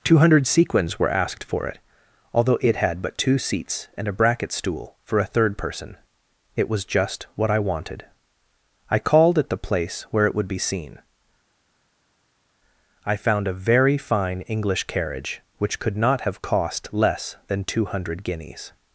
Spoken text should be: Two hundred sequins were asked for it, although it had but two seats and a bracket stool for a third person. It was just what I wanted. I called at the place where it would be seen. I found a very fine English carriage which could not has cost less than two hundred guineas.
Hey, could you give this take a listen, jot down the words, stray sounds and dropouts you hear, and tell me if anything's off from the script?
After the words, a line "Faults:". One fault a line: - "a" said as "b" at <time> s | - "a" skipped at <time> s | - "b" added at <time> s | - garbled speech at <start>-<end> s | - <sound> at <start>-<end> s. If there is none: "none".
Two hundred sequins were asked for it, although it had but two seats and a bracket stool for a third person. It was just what I wanted. I called at the place where it would be seen. I found a very fine English carriage which could not have cost less than two hundred guineas.
Faults:
- "has" said as "have" at 16.2 s